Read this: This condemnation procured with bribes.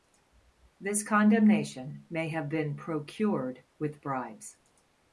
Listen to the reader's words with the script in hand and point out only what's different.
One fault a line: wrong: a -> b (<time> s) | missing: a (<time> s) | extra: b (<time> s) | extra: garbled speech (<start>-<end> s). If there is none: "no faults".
extra: may have been (2.1 s)